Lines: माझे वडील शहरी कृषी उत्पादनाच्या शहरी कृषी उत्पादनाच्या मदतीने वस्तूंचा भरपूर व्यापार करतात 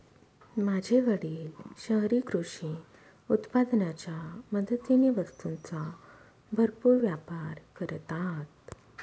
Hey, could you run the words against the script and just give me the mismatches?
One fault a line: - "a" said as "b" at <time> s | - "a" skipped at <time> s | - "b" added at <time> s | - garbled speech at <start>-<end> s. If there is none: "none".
- "शहरी कृषी उत्पादनाच्या" skipped at 4.2 s